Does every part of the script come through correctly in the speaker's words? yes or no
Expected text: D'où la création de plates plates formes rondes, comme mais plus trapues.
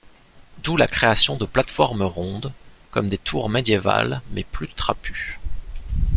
no